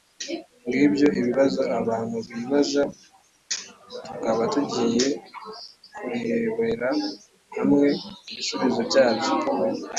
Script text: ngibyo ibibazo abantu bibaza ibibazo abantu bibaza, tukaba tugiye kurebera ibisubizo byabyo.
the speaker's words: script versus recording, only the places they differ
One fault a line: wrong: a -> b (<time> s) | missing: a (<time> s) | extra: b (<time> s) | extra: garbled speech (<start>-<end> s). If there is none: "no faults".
missing: ibibazo abantu bibaza (2.8 s)
extra: hamwe (7.6 s)